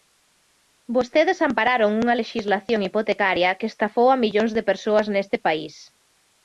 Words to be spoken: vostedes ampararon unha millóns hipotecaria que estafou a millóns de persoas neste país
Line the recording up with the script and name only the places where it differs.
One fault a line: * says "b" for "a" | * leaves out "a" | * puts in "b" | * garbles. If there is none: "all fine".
* says "lexislación" for "millóns"